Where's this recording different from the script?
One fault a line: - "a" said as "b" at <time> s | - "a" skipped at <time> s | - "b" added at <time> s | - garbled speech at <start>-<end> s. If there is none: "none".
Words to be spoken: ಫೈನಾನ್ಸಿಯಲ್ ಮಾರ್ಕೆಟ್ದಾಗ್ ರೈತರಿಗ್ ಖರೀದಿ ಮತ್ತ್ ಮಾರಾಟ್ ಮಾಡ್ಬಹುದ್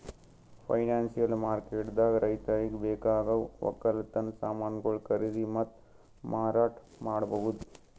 - "ಬೇಕಾಗವ್ ವಕ್ಕಲತನ್ ಸಮಾನ್ಗೊಳು" added at 2.9 s